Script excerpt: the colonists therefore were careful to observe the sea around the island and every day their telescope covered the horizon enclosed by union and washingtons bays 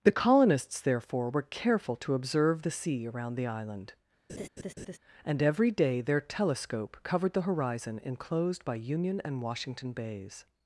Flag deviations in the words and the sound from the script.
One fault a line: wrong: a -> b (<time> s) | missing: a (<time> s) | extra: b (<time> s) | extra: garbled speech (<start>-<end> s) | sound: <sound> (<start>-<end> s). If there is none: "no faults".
sound: laugh (4.3-5.0 s)
wrong: washingtons -> washington (9.4 s)